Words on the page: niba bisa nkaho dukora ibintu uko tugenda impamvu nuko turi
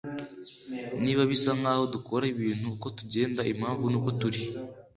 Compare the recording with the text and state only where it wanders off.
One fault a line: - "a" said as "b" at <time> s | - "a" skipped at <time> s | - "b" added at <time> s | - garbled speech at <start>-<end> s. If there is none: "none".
none